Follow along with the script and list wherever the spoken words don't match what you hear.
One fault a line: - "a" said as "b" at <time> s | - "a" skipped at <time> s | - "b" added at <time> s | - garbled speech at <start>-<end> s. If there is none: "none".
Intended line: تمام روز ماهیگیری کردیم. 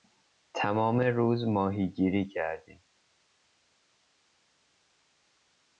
none